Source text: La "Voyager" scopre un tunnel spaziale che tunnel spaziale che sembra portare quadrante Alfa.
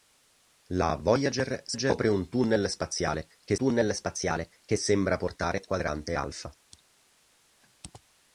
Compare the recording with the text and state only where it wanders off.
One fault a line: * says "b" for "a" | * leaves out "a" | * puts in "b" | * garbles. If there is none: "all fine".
all fine